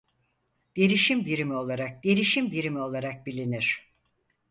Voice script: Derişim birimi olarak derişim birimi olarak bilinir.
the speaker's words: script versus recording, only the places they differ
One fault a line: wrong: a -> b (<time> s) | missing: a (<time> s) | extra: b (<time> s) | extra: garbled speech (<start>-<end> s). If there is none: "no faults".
no faults